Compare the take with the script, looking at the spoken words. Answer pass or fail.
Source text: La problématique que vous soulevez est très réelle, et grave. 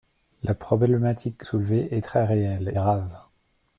fail